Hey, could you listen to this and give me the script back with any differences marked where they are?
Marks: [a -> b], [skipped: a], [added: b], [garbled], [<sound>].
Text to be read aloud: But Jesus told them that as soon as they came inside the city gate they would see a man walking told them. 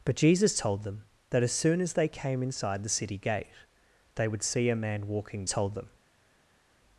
But Jesus told them that as soon as they came inside the city gate they would see a man walking told them.